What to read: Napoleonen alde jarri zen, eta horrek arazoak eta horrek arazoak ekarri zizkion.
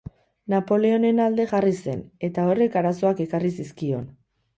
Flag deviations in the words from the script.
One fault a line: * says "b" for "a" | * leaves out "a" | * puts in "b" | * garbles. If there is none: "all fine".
* leaves out "eta horrek arazoak"